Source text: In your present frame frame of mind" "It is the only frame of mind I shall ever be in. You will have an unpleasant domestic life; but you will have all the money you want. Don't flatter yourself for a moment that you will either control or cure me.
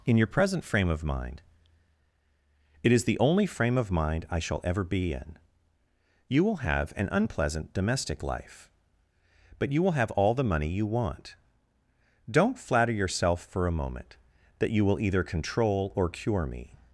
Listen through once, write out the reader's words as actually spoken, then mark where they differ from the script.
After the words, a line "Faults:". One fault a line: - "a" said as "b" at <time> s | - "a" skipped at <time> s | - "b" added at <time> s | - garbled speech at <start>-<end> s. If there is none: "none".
In your present frame of mind" "It is the only frame of mind I shall ever be in. You will have an unpleasant domestic life; but you will have all the money you want. Don't flatter yourself for a moment that you will either control or cure me.
Faults:
- "frame" skipped at 0.9 s